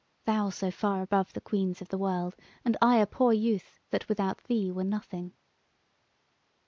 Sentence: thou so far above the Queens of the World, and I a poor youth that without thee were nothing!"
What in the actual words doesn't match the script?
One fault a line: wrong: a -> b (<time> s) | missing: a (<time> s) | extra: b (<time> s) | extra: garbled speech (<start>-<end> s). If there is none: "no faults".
no faults